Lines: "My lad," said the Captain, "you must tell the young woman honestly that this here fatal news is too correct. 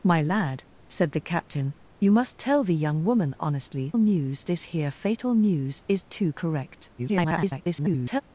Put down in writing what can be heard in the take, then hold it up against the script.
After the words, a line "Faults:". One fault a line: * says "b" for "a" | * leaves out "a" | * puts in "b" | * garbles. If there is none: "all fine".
"My lad," said the Captain, "you must tell the young woman honestly news this here fatal news is too correct. [garbled]
Faults:
* says "news" for "that"
* garbles